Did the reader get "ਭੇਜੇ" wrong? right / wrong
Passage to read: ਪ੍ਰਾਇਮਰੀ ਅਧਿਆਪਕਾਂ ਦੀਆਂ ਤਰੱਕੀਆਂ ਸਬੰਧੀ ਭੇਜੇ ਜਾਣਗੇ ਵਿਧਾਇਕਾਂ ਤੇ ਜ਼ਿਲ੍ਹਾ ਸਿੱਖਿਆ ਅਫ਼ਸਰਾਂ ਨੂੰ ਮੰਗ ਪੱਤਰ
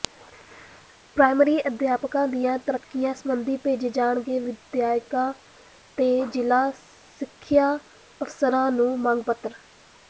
right